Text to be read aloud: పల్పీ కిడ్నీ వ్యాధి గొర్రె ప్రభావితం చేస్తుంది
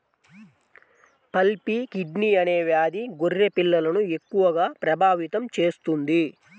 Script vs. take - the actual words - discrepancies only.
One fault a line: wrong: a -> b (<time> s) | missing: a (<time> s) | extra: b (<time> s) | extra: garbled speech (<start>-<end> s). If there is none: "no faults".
extra: అనే (2.4 s)
extra: పిల్లలను ఎక్కువగా (3.6 s)